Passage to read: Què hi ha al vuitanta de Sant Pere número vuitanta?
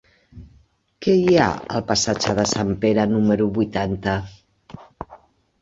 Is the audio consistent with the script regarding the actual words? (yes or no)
no